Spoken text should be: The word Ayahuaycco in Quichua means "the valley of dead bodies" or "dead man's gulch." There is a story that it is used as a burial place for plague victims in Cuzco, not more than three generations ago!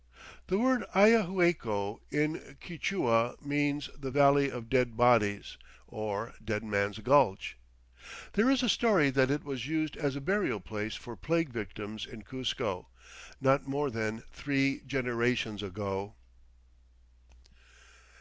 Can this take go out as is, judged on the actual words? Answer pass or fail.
fail